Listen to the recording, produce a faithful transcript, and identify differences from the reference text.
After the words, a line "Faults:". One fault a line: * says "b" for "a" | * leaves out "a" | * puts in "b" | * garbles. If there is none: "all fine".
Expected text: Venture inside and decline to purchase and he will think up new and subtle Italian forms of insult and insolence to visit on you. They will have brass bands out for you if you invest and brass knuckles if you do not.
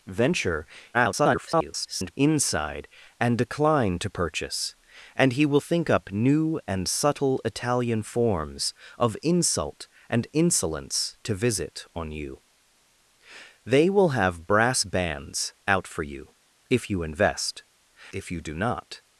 Venture [garbled] inside and decline to purchase and he will think up new and subtle Italian forms of insult and insolence to visit on you. They will have brass bands out for you if you invest if you do not.
Faults:
* garbles
* leaves out "and brass knuckles"